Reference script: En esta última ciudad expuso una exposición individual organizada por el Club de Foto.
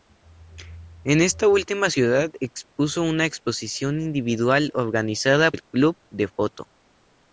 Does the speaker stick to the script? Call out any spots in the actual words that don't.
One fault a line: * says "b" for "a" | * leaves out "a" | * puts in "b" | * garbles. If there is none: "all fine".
* leaves out "por"